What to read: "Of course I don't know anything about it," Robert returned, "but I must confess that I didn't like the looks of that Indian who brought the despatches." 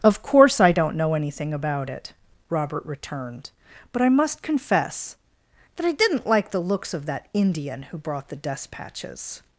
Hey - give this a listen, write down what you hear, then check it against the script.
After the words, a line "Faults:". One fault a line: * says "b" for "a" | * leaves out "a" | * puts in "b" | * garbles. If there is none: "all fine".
"Of course I don't know anything about it," Robert returned, "but I must confess that I didn't like the looks of that Indian who brought the despatches."
Faults:
all fine